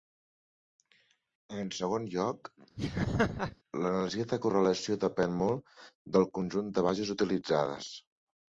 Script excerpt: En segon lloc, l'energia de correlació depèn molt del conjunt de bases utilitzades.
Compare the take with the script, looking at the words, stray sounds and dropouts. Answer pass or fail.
fail